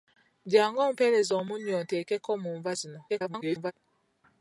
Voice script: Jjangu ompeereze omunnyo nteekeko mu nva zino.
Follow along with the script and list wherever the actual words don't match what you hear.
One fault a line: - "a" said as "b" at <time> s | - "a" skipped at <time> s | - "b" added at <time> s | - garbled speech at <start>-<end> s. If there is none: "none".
- garbled speech at 3.1-3.7 s